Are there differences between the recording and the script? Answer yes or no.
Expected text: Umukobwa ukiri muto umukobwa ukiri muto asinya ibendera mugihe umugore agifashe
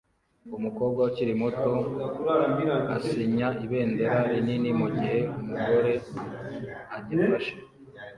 yes